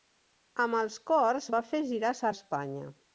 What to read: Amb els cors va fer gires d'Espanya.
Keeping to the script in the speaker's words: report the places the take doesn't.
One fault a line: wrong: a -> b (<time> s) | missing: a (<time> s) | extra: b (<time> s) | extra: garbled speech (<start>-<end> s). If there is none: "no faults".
no faults